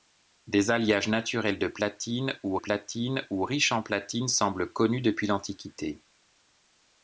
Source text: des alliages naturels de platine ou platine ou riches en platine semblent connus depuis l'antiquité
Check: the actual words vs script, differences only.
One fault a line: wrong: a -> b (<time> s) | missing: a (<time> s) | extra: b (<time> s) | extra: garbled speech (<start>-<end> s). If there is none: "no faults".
no faults